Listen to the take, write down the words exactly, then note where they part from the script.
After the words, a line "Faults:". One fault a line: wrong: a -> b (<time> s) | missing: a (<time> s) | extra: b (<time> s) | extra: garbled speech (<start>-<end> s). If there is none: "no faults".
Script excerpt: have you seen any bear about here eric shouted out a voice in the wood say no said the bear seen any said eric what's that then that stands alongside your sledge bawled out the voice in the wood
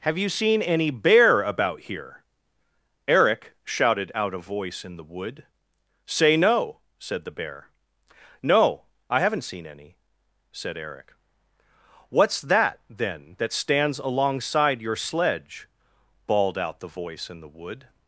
have you seen any bear about here eric shouted out a voice in the wood say no said the bear no i haven't seen any said eric what's that then that stands alongside your sledge bawled out the voice in the wood
Faults:
extra: no i haven't (8.4 s)